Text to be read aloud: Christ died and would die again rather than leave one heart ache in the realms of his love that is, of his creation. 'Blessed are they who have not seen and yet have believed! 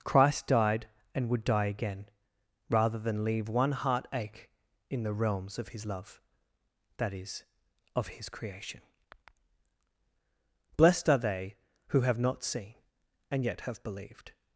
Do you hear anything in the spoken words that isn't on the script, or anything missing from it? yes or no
no